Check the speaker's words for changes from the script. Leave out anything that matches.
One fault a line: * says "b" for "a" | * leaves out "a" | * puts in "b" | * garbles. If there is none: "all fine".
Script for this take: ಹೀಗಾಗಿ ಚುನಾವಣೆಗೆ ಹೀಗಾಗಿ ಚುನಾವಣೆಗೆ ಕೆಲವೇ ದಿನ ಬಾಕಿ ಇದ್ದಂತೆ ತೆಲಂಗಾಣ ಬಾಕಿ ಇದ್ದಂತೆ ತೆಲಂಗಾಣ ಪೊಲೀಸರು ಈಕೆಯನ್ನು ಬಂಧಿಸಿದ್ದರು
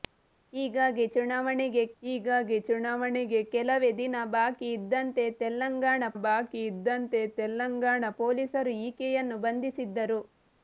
all fine